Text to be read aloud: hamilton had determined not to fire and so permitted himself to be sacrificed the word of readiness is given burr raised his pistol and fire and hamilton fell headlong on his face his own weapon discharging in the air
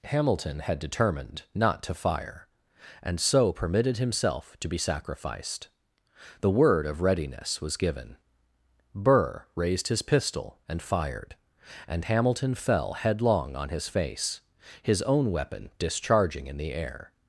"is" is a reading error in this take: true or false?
true